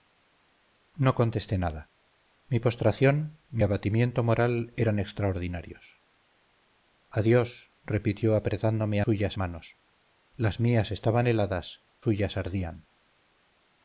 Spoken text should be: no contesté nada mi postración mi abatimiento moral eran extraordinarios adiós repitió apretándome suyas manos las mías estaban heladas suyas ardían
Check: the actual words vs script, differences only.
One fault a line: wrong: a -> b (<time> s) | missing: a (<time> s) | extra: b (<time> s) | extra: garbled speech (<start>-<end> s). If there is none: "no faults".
no faults